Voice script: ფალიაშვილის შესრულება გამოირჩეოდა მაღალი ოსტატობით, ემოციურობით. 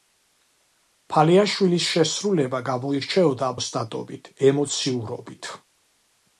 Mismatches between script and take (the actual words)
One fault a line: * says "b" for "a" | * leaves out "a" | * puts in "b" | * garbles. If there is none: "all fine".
* leaves out "მაღალი"